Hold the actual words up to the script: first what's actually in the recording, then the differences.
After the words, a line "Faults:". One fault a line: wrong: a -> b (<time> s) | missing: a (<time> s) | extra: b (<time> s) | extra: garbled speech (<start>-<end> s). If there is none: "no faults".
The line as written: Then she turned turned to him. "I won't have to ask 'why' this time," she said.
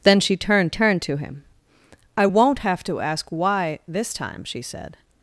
Then she turned turned to him. "I won't have to ask 'why' this time," she said.
Faults:
no faults